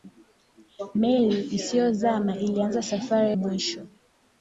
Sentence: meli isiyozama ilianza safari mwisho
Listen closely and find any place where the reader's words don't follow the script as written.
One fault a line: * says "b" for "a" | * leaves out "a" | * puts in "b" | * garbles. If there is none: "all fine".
all fine